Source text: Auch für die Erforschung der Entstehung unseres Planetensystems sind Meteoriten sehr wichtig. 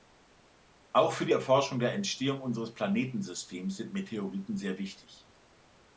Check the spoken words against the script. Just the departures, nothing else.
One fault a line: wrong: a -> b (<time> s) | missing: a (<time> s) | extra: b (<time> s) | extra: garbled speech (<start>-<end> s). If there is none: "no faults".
no faults